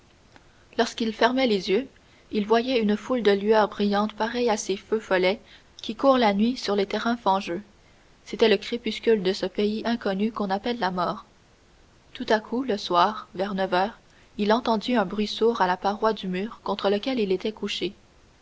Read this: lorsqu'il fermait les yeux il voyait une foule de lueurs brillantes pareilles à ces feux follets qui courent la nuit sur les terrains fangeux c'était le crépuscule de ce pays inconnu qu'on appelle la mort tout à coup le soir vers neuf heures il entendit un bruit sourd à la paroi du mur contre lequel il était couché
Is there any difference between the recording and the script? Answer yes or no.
no